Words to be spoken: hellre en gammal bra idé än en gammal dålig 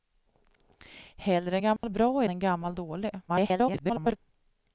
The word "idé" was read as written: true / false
false